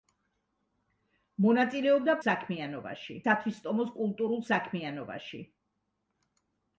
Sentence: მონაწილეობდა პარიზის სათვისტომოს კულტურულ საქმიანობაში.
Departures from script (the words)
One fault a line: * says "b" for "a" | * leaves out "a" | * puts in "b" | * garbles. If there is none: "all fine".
* says "საქმიანობაში" for "პარიზის"